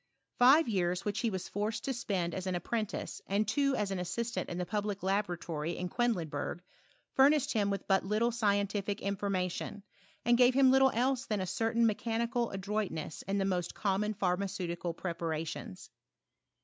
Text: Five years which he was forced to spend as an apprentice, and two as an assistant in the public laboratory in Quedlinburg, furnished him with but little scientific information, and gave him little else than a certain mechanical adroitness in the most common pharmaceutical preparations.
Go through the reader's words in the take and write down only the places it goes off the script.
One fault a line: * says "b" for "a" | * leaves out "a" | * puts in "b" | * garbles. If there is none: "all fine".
all fine